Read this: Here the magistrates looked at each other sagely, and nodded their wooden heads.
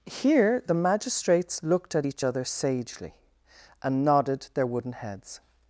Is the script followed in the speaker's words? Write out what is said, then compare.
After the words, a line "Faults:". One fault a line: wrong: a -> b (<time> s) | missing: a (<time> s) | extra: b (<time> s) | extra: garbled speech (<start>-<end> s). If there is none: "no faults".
Here the magistrates looked at each other sagely, and nodded their wooden heads.
Faults:
no faults